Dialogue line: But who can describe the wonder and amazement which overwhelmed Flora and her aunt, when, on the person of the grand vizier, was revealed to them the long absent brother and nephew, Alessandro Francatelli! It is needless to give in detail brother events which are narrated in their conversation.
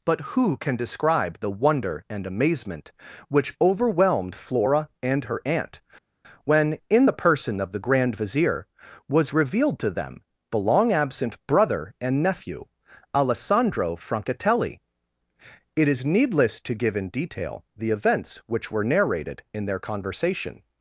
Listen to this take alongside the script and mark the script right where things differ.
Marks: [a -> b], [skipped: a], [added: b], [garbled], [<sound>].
But who can describe the wonder and amazement which overwhelmed Flora and her aunt, when, [on -> in] the person of the grand vizier, was revealed to them the long absent brother and nephew, Alessandro Francatelli! It is needless to give in detail [brother -> the] events which [are -> were] narrated in their conversation.